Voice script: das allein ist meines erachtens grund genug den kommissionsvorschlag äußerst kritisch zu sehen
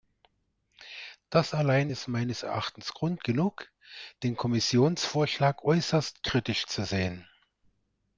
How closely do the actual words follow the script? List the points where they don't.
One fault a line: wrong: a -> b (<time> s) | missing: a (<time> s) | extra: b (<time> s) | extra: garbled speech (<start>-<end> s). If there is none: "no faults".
no faults